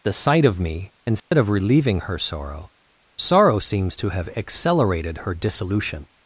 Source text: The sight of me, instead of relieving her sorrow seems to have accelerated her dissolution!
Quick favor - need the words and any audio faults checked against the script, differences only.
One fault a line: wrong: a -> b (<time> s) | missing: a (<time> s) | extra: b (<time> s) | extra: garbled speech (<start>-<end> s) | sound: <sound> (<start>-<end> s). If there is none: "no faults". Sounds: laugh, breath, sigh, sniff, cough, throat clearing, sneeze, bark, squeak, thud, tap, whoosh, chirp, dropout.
sound: dropout (1.2-1.3 s)
extra: sorrow (3.2 s)